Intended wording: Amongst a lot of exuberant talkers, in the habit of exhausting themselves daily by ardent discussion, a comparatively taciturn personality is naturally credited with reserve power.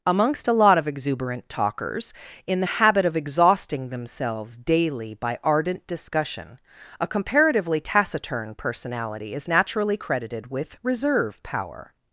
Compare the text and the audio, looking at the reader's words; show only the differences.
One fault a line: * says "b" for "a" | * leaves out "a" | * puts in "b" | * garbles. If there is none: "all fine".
all fine